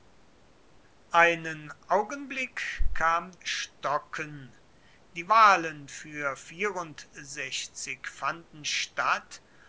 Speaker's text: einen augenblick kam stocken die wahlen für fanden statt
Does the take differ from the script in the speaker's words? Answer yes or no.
no